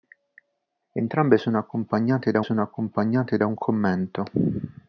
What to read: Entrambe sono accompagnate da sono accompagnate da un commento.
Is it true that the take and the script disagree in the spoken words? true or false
false